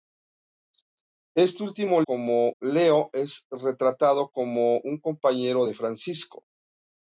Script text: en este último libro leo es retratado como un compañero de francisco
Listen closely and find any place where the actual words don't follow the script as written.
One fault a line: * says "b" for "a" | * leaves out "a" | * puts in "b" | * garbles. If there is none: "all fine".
* says "como" for "libro"